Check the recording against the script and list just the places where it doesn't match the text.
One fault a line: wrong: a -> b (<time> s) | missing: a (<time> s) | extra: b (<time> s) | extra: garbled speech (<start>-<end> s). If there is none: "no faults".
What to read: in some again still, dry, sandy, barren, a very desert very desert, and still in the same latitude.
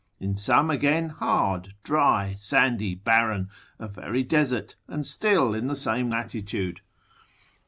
wrong: still -> hard (1.1 s)
missing: very desert (4.8 s)